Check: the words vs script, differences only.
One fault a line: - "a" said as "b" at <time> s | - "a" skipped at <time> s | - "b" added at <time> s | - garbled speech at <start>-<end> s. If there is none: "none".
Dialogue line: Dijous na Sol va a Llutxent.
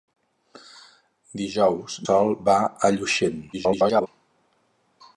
- "na" skipped at 2.0 s
- garbled speech at 3.5-4.1 s